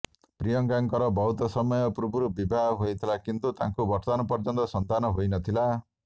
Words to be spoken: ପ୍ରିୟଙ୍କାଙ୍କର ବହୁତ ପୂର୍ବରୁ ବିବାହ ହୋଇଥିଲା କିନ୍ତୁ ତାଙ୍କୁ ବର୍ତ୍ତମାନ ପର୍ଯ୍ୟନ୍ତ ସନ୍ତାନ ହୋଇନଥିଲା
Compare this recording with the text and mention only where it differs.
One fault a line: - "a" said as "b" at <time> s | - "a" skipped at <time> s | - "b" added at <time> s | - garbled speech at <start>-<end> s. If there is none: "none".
- "ସମୟ" added at 1.5 s